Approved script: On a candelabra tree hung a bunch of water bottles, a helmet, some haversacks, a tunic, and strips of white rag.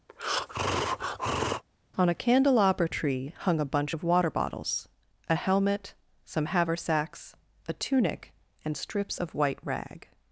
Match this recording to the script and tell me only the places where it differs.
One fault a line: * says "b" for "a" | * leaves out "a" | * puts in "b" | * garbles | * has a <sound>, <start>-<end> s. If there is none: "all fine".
* has a breath, 0.1-1.6 s